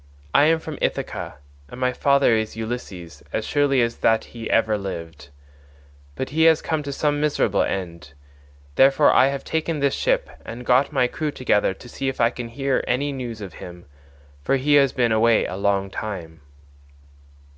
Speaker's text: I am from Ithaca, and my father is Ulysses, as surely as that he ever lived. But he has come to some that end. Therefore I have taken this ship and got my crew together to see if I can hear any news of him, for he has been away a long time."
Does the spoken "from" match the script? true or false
true